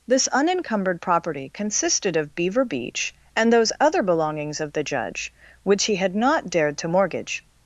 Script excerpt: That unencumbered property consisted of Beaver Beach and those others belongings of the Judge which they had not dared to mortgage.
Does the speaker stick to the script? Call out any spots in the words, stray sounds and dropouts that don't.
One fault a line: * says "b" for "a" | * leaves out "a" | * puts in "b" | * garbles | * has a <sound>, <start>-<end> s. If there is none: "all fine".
* says "This" for "That"
* says "other" for "others"
* says "he" for "they"